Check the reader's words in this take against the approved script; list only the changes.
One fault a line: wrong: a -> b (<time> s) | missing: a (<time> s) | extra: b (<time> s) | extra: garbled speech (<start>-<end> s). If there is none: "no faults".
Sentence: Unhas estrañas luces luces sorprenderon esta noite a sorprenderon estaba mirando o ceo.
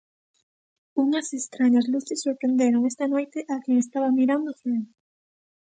missing: luces (2.2 s)
wrong: sorprenderon -> quen (3.6 s)